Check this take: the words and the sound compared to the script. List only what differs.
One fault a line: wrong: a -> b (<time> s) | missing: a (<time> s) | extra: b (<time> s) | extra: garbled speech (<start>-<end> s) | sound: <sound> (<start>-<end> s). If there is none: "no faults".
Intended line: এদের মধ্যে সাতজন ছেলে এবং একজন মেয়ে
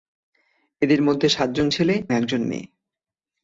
missing: এবং (1.9 s)